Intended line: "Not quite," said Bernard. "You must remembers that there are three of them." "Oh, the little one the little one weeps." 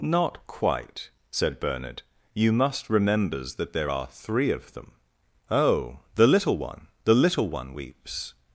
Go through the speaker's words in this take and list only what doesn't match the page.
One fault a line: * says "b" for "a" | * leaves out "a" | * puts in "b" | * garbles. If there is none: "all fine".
all fine